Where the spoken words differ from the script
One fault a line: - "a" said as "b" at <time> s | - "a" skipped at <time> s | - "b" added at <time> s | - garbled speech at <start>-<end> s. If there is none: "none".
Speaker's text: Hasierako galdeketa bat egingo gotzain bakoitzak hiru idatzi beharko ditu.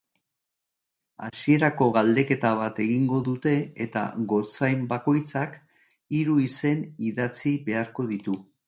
- "dute eta" added at 3.3 s
- "izen" added at 6.5 s